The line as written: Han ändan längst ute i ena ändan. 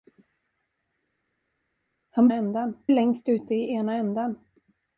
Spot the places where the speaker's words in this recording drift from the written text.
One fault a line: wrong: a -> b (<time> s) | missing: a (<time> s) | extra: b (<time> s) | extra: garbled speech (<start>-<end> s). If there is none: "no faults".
no faults